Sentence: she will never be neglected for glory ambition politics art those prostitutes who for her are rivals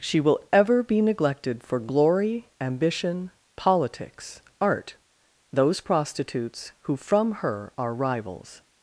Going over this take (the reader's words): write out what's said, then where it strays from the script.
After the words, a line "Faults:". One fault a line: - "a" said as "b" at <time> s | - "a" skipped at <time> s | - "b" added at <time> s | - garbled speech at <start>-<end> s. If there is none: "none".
she will ever be neglected for glory ambition politics art those prostitutes who from her are rivals
Faults:
- "never" said as "ever" at 0.5 s
- "for" said as "from" at 6.9 s